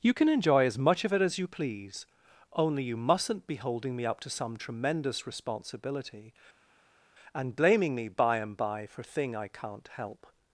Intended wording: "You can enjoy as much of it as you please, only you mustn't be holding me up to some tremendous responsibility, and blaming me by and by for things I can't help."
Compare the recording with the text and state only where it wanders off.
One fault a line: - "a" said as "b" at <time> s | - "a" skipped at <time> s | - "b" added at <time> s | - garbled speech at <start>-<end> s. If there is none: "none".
- "things" said as "thing" at 9.0 s